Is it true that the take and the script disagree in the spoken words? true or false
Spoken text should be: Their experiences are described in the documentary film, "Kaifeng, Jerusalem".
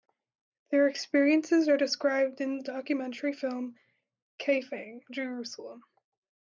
false